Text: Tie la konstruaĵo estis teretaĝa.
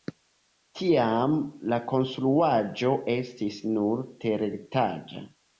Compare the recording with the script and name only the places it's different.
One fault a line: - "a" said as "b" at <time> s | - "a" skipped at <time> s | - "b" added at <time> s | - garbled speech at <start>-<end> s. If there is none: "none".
- "Tie" said as "Tiam" at 0.8 s
- "nur" added at 3.7 s